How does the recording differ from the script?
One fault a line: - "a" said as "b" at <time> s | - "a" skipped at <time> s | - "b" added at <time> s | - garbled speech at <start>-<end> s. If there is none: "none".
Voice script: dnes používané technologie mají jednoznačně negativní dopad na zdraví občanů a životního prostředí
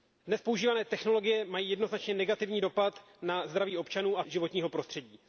none